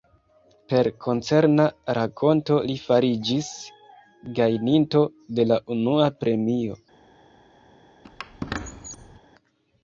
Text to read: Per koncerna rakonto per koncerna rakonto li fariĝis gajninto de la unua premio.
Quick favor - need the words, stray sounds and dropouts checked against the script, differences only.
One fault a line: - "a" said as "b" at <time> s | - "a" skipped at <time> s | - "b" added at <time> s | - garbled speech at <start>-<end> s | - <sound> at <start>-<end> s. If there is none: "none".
- "per koncerna rakonto" skipped at 2.6 s
- squeak at 8.0-9.2 s